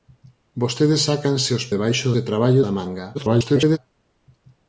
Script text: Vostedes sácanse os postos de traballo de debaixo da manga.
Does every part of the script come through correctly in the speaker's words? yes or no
no